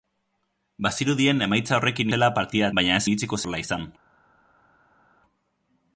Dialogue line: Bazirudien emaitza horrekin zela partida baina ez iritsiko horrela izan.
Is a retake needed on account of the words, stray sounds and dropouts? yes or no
no